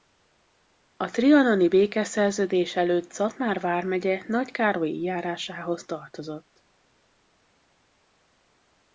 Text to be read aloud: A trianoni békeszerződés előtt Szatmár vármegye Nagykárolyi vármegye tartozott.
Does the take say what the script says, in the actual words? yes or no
no